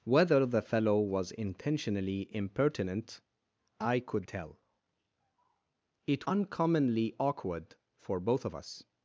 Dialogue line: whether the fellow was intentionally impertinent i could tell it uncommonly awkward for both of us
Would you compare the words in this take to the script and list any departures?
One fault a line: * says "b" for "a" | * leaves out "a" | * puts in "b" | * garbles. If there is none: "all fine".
all fine